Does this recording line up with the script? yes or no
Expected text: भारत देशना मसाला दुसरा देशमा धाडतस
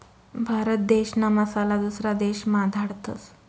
yes